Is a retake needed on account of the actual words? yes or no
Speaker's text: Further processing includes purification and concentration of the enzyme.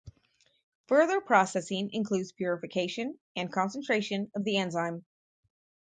no